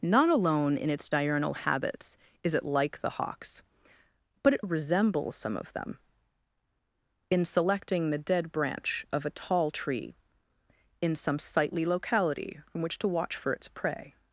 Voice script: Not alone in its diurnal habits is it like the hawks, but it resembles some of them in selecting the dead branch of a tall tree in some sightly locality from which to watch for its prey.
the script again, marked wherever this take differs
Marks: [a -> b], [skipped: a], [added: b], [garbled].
Not alone in its diurnal habits is it like the hawks, but it resembles some of them in selecting the dead branch of a tall tree in some sightly locality from which to watch for its prey.